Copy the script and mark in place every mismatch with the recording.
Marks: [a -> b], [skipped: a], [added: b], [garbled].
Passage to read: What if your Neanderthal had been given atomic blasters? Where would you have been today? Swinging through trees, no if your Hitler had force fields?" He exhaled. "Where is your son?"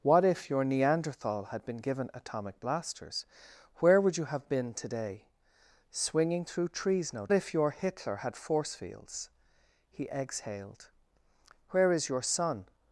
What if your Neanderthal had been given atomic blasters? Where would you have been today? Swinging through trees, no if your Hitler had force fields?" He exhaled. "Where is your son?"